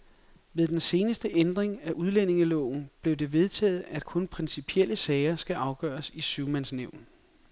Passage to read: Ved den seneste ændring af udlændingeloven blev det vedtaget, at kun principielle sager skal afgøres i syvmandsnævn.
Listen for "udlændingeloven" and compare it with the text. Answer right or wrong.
right